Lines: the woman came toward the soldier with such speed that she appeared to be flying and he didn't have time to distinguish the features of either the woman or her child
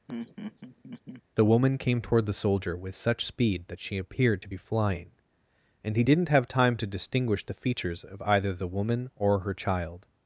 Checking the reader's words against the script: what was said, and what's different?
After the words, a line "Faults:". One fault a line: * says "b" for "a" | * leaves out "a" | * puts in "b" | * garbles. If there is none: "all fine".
the woman came toward the soldier with such speed that she appeared to be flying and he didn't have time to distinguish the features of either the woman or her child
Faults:
all fine